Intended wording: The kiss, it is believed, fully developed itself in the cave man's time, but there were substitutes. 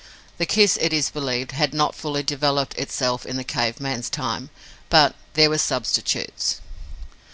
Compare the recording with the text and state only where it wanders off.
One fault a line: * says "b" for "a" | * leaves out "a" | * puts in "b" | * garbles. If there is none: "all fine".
* puts in "had not"